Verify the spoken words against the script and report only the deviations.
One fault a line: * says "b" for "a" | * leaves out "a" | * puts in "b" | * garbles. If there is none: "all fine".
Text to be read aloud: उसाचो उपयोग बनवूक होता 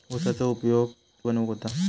all fine